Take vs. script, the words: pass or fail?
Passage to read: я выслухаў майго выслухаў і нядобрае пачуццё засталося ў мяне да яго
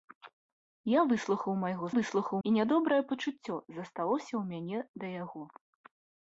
pass